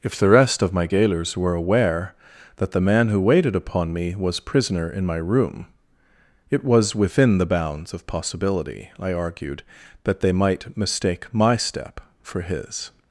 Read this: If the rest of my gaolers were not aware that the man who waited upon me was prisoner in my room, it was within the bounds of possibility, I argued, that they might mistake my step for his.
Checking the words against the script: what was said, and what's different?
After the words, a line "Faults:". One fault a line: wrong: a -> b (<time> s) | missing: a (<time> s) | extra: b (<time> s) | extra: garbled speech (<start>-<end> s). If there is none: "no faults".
If the rest of my gaolers were aware that the man who waited upon me was prisoner in my room, it was within the bounds of possibility, I argued, that they might mistake my step for his.
Faults:
missing: not (1.5 s)